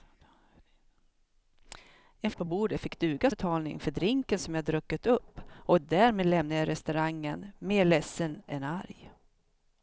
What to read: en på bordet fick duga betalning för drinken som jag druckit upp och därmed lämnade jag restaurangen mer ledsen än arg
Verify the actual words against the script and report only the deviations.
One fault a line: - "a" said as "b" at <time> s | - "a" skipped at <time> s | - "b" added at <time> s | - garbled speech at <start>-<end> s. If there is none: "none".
none